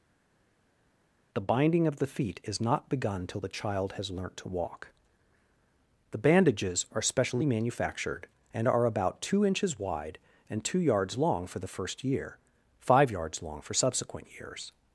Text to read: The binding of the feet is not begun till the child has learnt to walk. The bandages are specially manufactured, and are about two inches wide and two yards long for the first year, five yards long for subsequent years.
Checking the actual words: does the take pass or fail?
pass